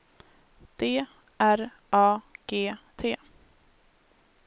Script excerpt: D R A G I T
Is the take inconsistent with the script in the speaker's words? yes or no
yes